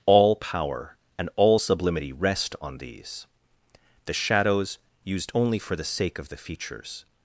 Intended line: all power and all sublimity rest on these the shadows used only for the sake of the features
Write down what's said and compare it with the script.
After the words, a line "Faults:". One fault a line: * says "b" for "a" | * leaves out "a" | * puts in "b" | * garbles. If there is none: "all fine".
all power and all sublimity rest on these the shadows used only for the sake of the features
Faults:
all fine